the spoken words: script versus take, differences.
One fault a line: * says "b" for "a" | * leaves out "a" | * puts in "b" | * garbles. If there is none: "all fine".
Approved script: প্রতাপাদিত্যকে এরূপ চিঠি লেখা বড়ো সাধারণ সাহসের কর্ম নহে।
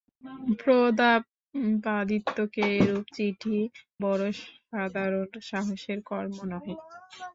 * leaves out "লেখা"